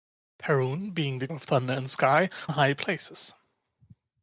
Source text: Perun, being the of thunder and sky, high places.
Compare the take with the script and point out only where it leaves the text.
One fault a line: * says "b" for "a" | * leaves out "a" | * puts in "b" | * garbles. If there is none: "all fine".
all fine